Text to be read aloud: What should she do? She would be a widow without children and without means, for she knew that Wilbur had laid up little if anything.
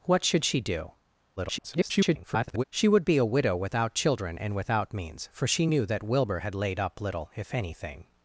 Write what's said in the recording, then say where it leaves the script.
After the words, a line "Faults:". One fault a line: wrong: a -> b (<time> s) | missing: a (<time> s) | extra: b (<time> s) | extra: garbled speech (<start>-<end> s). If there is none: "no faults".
What should she do? [garbled] She would be a widow without children and without means, for she knew that Wilbur had laid up little if anything.
Faults:
extra: garbled speech (1.4-2.6 s)